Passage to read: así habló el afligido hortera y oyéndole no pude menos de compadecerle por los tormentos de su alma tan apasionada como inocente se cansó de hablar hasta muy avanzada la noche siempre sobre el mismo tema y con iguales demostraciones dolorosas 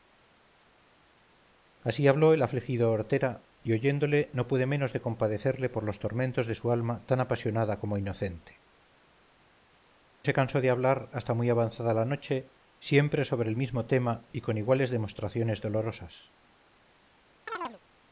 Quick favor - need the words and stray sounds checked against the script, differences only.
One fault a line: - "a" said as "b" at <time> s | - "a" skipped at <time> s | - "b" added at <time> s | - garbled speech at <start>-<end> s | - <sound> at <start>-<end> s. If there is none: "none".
- chirp at 17.5-17.8 s